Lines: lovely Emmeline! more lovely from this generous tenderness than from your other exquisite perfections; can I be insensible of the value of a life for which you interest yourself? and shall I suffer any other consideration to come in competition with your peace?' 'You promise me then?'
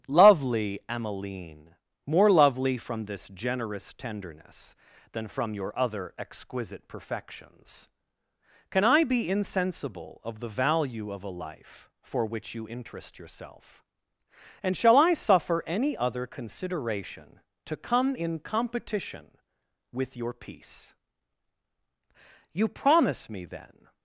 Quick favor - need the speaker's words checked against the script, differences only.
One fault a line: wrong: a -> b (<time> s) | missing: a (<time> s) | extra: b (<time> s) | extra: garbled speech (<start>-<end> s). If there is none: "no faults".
no faults